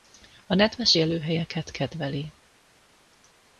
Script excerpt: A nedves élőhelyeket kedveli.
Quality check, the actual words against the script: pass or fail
pass